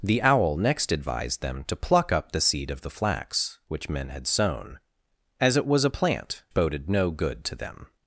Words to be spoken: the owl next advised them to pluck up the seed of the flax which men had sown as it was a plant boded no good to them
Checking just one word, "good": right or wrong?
right